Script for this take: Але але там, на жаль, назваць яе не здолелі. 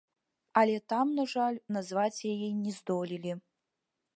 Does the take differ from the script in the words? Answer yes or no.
yes